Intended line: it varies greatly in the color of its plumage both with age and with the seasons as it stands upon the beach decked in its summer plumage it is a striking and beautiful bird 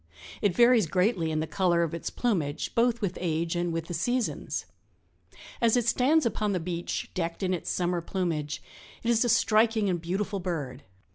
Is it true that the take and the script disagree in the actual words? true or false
false